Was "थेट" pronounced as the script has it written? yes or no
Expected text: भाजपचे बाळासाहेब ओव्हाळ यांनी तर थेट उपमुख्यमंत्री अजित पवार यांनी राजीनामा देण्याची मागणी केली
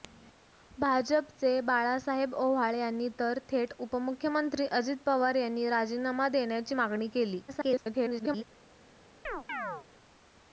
yes